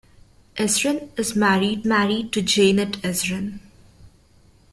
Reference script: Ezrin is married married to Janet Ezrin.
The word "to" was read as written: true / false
true